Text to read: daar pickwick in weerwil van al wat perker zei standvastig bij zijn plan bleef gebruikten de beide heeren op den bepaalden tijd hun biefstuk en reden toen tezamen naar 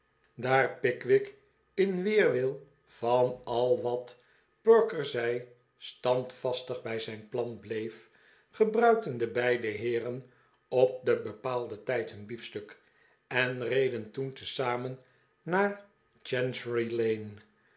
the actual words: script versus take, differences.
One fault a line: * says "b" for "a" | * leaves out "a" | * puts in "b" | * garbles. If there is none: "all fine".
all fine